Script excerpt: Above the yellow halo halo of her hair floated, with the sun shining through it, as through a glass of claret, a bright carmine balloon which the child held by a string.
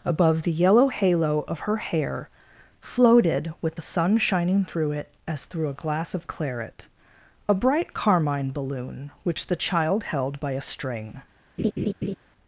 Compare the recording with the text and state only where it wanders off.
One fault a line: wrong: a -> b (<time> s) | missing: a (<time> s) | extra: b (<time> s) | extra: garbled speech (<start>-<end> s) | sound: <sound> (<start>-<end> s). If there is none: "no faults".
missing: halo (1.4 s)
sound: laugh (11.6-12.2 s)